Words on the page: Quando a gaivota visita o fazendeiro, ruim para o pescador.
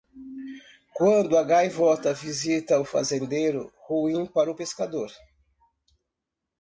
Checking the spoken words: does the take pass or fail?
pass